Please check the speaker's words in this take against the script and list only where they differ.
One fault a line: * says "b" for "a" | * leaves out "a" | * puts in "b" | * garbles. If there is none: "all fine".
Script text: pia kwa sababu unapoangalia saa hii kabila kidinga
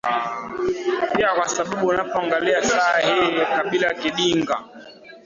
all fine